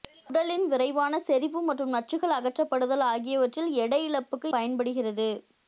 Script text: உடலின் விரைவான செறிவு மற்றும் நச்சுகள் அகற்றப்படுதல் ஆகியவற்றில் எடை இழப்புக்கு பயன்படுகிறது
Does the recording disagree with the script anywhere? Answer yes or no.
no